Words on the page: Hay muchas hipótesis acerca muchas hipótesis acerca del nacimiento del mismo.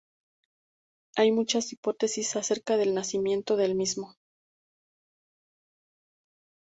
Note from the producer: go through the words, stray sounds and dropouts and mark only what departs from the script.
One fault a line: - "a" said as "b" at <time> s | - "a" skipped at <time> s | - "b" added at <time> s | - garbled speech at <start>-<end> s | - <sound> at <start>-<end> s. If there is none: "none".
- "muchas hipótesis acerca" skipped at 2.8 s